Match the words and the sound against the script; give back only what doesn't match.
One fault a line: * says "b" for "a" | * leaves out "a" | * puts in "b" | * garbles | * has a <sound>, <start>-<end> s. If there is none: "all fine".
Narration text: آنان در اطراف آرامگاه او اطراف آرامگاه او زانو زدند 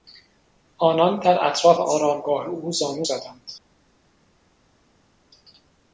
* leaves out "اطراف آرامگاه او"